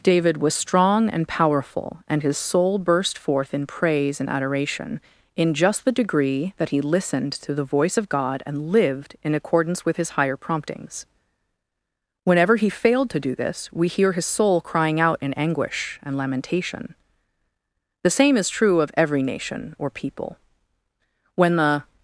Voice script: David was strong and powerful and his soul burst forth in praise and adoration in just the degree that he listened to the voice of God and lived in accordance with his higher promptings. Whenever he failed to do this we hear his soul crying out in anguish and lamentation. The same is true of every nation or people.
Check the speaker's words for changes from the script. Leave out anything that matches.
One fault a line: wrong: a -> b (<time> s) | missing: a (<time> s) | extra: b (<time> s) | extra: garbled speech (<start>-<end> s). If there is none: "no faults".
extra: When the (21.4 s)